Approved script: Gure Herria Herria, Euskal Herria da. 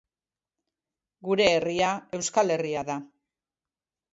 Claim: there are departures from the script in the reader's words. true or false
true